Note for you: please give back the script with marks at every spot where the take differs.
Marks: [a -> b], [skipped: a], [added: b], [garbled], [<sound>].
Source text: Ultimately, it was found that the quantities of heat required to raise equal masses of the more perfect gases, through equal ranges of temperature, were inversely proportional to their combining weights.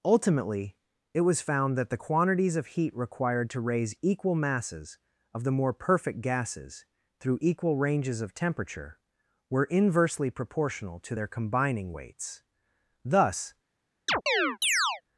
Ultimately, it was found that the quantities of heat required to raise equal masses of the more perfect gases, through equal ranges of temperature, were inversely proportional to their combining weights. [added: Thus] [chirp]